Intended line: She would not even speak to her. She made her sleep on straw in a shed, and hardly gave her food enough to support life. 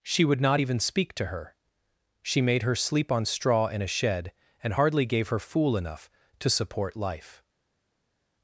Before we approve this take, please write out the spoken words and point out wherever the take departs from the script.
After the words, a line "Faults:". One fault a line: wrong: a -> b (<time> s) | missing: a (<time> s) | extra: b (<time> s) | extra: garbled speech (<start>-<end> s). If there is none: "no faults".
She would not even speak to her. She made her sleep on straw in a shed, and hardly gave her fool enough to support life.
Faults:
wrong: food -> fool (5.4 s)